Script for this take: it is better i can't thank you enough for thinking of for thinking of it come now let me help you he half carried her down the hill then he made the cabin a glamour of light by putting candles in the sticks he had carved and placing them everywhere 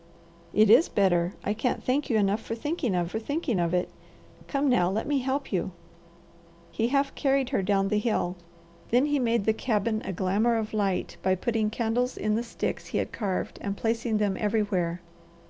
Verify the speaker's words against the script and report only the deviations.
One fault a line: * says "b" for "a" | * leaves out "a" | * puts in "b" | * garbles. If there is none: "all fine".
all fine